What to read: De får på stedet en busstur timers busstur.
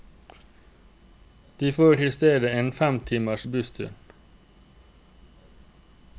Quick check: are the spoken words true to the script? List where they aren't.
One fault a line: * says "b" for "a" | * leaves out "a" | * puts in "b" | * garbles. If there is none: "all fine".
* says "i" for "på"
* says "fem" for "busstur"